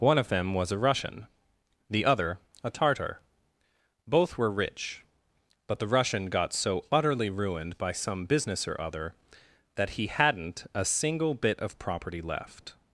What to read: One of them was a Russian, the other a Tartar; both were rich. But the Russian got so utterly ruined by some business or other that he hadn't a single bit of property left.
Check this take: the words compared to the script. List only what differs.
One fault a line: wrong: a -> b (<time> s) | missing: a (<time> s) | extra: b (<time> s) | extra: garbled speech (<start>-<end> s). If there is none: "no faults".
no faults